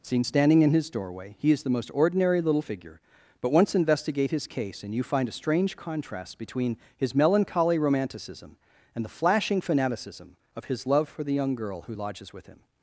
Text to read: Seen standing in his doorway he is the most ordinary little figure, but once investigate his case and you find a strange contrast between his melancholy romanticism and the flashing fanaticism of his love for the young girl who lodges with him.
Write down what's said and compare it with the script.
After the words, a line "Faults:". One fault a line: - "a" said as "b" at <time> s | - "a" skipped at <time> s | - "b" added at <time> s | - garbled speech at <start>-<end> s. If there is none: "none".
Seen standing in his doorway he is the most ordinary little figure, but once investigate his case and you find a strange contrast between his melancholy romanticism and the flashing fanaticism of his love for the young girl who lodges with him.
Faults:
none